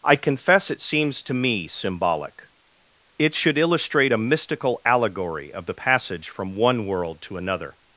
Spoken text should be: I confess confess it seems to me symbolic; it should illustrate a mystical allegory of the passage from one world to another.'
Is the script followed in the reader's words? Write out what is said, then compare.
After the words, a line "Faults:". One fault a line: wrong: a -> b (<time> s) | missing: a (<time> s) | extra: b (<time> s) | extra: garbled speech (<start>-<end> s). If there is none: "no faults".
I confess it seems to me symbolic; it should illustrate a mystical allegory of the passage from one world to another.'
Faults:
missing: confess (0.7 s)